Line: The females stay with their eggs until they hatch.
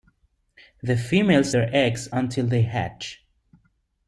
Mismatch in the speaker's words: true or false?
true